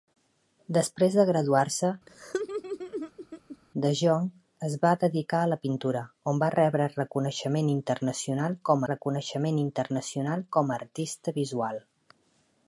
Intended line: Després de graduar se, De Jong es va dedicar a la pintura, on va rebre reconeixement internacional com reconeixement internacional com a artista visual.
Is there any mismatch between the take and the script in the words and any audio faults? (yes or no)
yes